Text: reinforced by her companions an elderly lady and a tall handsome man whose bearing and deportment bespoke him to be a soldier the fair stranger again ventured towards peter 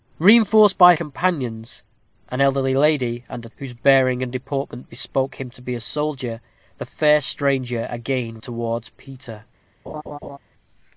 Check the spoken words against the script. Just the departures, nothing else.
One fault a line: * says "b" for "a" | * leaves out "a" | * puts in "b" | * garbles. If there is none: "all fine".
* leaves out "her"
* leaves out "tall handsome man"
* leaves out "ventured"